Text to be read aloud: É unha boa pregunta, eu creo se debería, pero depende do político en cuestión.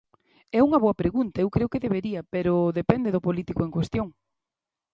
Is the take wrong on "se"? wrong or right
wrong